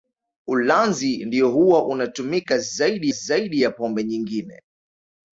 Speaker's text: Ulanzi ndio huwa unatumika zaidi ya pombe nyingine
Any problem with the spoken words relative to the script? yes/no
yes